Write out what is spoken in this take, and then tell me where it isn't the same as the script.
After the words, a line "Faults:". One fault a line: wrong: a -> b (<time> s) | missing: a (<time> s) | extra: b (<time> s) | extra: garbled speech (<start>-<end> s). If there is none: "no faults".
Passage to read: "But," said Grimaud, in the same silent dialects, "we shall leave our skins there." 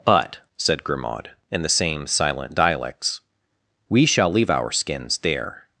"But," said Grimaud, in the same silent dialects, "we shall leave our skins there."
Faults:
no faults